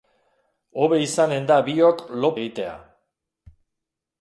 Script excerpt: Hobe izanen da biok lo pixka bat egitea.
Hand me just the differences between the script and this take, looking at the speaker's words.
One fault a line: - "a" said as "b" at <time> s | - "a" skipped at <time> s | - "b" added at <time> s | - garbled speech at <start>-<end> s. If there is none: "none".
- "pixka bat" skipped at 2.3 s